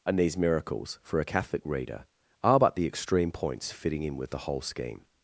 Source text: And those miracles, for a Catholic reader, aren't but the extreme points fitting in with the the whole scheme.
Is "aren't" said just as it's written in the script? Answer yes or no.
no